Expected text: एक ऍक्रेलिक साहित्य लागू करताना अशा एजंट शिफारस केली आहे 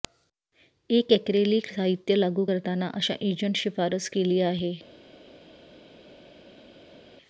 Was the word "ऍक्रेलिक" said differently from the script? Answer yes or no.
no